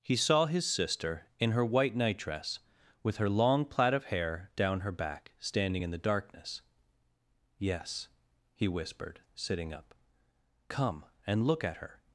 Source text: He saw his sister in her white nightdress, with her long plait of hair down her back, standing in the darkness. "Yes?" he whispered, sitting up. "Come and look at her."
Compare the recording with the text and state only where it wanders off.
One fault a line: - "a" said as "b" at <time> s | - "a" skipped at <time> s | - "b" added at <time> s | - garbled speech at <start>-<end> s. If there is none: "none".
none